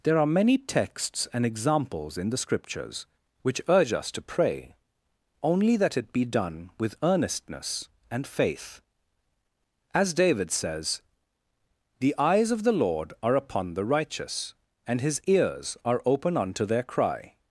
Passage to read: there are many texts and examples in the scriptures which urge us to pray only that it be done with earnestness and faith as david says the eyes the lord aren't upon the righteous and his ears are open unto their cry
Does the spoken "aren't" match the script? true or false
false